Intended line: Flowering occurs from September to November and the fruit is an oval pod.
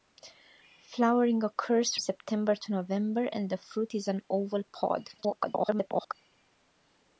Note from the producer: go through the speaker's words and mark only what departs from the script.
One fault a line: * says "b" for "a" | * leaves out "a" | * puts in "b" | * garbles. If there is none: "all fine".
* leaves out "from"
* garbles